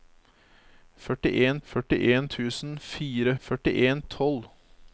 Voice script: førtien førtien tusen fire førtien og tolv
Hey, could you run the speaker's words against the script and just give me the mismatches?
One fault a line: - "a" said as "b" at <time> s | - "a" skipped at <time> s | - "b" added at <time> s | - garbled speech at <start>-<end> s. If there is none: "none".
none